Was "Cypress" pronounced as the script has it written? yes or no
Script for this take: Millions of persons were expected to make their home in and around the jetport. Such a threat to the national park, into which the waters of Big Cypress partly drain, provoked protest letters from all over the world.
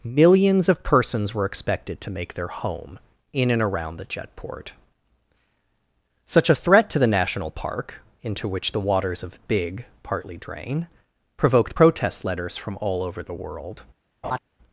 no